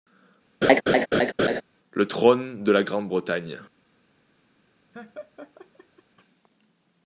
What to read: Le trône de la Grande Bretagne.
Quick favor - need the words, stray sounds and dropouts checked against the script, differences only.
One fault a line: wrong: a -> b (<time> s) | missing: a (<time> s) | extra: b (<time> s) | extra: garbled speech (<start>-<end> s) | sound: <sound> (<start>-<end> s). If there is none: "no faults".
sound: laugh (0.6-1.6 s)
sound: laugh (4.9-6.0 s)